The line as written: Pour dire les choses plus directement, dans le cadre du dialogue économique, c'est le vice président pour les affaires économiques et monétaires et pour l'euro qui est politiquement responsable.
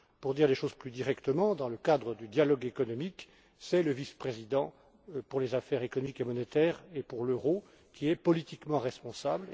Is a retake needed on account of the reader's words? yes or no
no